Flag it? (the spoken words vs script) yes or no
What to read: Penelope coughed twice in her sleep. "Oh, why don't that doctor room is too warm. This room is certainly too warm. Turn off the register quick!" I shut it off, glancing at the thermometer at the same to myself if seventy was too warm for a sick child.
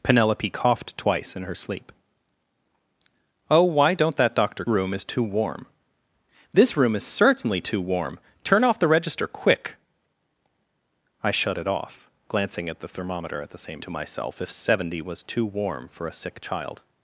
no